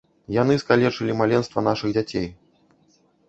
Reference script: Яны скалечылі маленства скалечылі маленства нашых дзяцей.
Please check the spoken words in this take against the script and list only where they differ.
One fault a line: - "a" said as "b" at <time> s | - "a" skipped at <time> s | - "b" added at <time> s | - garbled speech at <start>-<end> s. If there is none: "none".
- "скалечылі маленства" skipped at 1.7 s